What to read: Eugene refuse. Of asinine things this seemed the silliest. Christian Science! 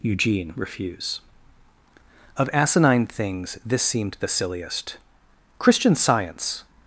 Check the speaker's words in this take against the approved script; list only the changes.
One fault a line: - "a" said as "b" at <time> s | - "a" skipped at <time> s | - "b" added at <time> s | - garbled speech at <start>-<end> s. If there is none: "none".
none